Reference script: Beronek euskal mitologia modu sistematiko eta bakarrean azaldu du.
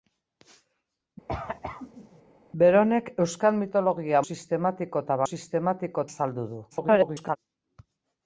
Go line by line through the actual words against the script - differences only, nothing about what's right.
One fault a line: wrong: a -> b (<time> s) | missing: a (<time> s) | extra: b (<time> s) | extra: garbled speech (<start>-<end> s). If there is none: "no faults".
missing: modu (4.2 s)
wrong: bakarrean -> sistematiko (5.3 s)
extra: garbled speech (6.7-7.4 s)